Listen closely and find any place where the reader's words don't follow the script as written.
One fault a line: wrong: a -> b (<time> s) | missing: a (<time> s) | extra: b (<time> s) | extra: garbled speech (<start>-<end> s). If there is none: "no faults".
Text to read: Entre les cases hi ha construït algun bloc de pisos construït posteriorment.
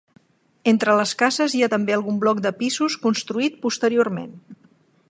wrong: construït -> també (1.7 s)